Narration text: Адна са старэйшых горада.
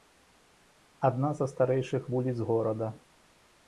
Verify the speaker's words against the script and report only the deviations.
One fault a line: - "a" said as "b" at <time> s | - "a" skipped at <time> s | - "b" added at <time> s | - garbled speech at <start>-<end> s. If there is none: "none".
- "вуліц" added at 2.1 s